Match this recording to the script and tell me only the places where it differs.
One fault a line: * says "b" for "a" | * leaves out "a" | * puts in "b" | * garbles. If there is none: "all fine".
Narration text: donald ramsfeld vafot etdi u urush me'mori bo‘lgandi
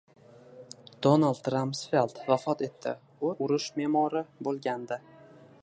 all fine